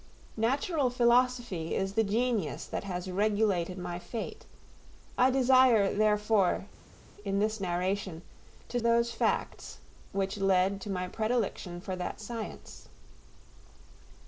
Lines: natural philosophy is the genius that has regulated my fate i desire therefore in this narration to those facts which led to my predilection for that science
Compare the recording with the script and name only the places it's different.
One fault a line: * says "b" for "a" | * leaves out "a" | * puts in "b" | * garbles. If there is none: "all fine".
all fine